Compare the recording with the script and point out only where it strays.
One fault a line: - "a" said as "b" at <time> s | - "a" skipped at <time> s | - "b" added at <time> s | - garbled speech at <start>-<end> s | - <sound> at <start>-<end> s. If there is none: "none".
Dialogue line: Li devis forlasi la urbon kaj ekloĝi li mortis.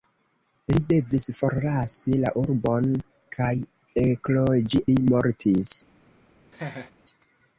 - laugh at 6.5-6.9 s